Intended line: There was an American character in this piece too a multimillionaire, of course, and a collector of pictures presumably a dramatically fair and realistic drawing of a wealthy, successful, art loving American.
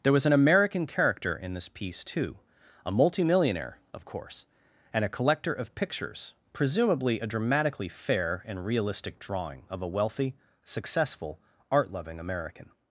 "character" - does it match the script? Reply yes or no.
yes